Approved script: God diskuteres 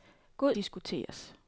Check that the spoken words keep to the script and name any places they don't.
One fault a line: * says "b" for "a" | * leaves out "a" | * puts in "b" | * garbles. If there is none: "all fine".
all fine